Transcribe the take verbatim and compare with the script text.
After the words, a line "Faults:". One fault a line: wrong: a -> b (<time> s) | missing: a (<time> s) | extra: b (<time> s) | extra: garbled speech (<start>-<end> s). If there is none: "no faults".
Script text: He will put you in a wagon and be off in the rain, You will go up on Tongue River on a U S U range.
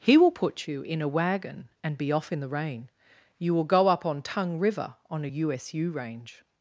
He will put you in a wagon and be off in the rain, You will go up on Tongue River on a U S U range.
Faults:
no faults